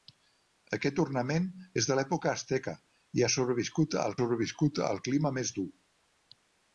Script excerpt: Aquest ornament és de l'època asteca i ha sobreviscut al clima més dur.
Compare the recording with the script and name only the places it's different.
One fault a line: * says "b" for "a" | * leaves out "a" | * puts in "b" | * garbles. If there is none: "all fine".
* puts in "sobreviscut al"